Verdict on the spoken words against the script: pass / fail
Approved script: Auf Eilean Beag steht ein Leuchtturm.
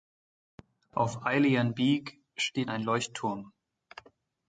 pass